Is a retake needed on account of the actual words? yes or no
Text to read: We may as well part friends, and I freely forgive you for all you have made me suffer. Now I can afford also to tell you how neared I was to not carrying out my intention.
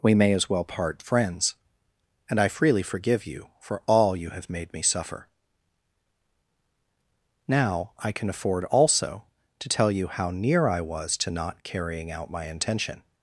yes